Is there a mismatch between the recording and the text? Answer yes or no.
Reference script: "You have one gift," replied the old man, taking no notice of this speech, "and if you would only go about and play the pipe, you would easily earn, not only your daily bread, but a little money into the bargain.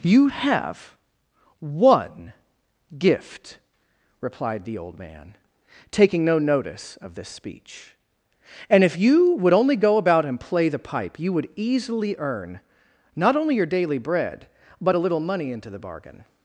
no